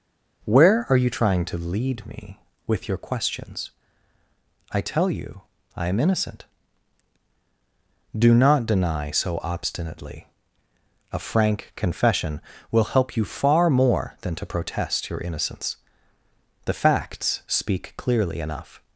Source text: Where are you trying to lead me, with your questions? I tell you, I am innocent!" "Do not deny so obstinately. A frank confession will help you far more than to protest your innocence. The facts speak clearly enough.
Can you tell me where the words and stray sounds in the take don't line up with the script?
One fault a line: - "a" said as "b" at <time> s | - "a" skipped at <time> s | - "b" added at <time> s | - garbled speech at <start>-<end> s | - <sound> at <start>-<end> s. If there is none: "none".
none